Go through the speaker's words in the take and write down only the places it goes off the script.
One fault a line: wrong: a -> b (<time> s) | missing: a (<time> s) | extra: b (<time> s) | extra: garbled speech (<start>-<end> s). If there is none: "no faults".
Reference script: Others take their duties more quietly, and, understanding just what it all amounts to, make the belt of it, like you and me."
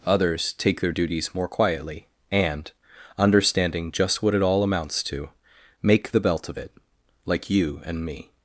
no faults